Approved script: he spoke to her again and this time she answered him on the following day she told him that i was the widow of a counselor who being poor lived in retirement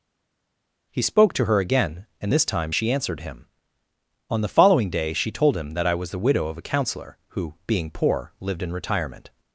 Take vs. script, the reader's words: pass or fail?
pass